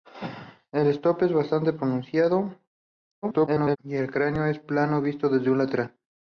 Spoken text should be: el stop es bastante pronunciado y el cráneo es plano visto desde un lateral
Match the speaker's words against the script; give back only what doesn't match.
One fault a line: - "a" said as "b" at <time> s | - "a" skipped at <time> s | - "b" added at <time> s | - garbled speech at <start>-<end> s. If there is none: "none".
- garbled speech at 3.2-3.8 s